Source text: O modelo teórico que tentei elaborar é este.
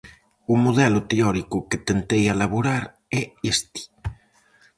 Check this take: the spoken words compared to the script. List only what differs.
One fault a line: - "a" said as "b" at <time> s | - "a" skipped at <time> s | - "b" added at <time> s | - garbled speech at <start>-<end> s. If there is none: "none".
none